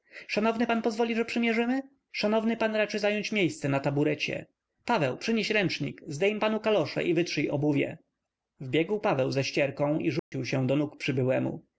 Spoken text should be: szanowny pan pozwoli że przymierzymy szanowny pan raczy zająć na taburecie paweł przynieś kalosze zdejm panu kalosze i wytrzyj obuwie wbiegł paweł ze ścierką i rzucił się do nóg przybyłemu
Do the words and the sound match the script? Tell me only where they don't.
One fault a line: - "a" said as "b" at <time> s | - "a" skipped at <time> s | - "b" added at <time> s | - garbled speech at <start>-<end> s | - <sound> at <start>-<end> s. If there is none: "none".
- "miejsce" added at 3.3 s
- "kalosze" said as "ręcznik" at 5.5 s
- dropout at 10.2-10.3 s